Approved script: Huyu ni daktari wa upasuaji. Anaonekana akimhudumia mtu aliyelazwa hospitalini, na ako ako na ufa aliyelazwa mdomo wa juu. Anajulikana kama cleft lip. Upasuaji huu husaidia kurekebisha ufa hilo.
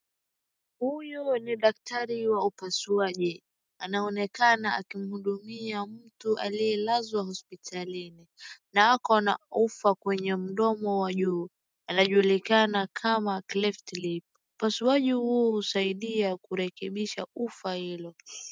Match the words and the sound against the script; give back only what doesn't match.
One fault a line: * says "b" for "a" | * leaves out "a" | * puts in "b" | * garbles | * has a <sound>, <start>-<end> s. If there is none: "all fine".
* leaves out "ako"
* says "kwenye" for "aliyelazwa"